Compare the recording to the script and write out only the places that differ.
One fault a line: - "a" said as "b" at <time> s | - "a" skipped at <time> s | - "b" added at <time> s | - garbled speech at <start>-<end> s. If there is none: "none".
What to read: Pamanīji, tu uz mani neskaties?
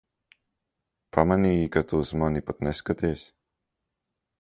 - "ka" added at 1.7 s
- "pat" added at 2.5 s